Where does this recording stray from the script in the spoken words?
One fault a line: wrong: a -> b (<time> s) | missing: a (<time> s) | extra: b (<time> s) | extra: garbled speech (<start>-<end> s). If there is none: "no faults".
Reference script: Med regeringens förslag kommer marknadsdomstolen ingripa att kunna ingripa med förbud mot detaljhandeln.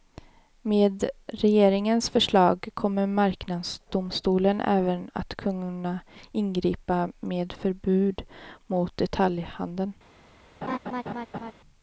wrong: ingripa -> även (4.6 s)